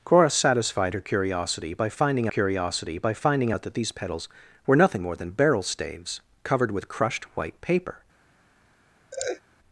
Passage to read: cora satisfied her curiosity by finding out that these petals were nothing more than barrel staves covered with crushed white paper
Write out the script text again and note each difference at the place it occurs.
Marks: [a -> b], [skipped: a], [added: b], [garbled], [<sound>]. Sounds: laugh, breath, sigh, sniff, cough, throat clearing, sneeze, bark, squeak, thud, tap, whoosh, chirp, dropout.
cora satisfied her curiosity by finding [added: curiosity by finding] out that these petals were nothing more than barrel staves covered with crushed white paper [laugh]